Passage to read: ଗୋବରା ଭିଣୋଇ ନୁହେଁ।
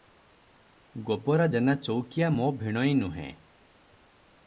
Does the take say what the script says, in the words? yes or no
no